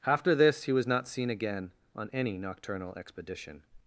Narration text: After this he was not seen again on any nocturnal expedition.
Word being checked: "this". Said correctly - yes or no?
yes